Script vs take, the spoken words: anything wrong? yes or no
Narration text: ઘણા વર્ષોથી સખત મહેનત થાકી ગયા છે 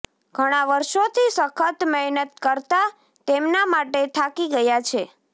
yes